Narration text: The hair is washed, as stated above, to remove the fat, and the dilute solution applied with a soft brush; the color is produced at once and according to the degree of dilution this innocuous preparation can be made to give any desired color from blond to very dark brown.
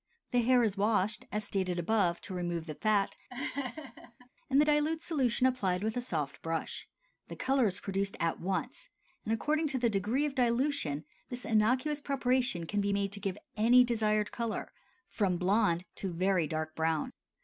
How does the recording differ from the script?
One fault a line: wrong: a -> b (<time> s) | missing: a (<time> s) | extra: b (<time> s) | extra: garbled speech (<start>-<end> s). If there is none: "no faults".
no faults